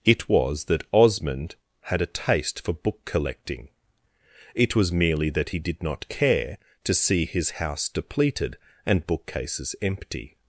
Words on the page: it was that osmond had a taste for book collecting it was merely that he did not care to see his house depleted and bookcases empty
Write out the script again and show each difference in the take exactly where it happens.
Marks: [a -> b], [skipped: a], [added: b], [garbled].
it was that osmond had a taste for book collecting it was merely that he did not care to see his house depleted and bookcases empty